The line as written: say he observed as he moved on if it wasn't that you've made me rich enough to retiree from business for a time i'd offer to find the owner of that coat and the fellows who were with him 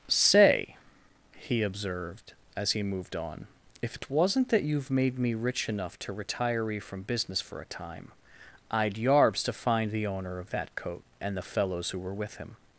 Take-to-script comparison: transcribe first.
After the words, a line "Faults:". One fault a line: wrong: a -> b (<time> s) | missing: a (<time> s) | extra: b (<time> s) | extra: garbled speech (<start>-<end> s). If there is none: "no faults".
say he observed as he moved on if it wasn't that you've made me rich enough to retiree from business for a time i'd yarbs to find the owner of that coat and the fellows who were with him
Faults:
wrong: offer -> yarbs (8.9 s)